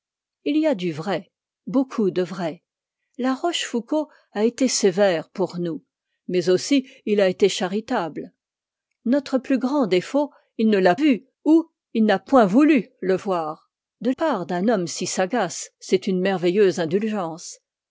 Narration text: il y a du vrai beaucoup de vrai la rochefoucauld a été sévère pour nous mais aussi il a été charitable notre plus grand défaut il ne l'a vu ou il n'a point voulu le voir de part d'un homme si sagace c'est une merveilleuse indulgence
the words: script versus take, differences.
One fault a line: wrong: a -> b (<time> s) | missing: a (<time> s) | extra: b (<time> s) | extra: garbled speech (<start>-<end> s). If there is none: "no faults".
no faults